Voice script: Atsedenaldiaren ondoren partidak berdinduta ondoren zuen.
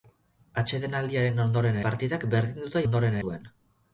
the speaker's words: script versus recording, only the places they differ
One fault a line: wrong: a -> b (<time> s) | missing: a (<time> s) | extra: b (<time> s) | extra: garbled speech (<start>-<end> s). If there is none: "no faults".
no faults